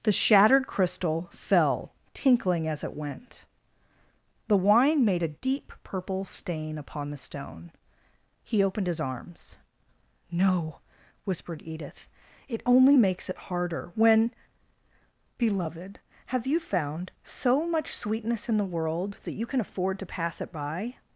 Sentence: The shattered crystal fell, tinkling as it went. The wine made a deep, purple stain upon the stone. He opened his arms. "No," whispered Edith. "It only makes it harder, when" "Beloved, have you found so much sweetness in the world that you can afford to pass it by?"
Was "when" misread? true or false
false